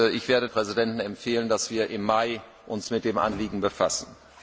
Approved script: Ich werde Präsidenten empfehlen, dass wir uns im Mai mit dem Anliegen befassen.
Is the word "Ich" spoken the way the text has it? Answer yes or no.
yes